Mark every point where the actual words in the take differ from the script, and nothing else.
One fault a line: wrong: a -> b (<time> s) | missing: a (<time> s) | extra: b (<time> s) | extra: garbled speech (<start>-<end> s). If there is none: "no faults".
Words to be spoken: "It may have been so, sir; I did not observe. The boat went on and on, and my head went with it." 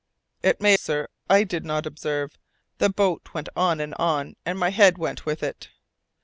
missing: have been so (0.7 s)